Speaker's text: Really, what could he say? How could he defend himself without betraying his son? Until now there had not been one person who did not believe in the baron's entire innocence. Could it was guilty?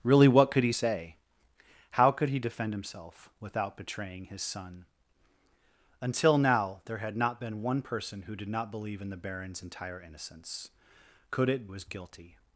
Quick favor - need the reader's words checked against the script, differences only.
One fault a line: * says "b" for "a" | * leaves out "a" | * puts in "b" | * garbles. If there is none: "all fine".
all fine